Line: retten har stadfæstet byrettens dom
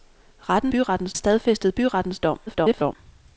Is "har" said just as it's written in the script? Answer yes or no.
no